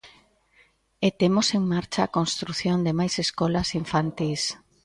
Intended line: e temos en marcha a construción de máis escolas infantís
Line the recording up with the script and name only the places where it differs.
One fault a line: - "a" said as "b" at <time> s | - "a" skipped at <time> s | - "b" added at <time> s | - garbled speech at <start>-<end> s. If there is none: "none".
none